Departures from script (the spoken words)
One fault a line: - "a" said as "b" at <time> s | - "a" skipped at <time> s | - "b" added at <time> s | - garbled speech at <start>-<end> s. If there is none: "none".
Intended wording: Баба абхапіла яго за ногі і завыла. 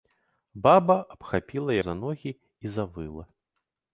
- "яго" skipped at 1.7 s